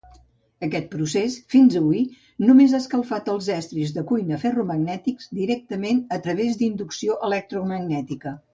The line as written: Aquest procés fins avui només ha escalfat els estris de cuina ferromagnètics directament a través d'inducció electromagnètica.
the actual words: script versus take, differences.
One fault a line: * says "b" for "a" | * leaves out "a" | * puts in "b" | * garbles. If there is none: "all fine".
all fine